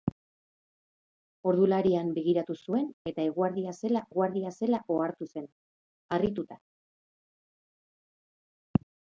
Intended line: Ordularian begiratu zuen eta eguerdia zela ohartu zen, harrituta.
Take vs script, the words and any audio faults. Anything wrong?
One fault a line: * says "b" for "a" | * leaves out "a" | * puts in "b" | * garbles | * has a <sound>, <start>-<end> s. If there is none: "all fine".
* puts in "eguerdia zela"